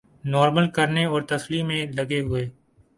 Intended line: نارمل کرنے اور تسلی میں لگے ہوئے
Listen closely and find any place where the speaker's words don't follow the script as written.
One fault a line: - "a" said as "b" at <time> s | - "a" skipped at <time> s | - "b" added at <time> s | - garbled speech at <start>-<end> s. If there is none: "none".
none